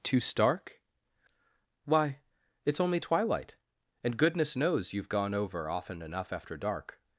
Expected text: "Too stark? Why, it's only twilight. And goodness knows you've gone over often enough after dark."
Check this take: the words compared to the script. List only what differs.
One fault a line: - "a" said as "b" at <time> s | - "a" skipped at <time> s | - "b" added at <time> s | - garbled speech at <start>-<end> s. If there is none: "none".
none